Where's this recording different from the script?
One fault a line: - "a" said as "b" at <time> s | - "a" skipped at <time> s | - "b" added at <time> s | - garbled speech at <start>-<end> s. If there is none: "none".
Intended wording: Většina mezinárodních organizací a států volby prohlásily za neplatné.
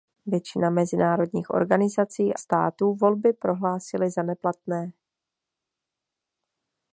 - "a" skipped at 2.4 s